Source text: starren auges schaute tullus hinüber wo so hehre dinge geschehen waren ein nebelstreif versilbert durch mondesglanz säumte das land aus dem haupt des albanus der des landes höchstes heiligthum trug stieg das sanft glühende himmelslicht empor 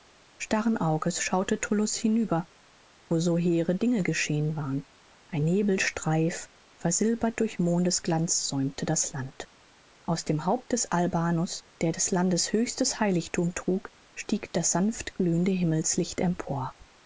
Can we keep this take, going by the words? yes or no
yes